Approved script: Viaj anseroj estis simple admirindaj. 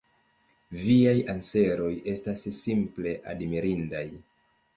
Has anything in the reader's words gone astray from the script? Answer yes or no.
yes